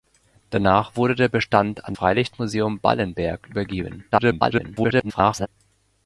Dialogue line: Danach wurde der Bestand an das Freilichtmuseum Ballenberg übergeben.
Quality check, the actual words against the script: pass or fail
fail